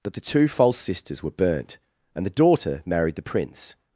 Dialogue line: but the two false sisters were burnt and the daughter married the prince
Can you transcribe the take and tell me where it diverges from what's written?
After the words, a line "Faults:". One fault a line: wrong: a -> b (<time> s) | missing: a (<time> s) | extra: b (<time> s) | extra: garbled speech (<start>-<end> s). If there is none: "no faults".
that the two false sisters were burnt and the daughter married the prince
Faults:
wrong: but -> that (0.0 s)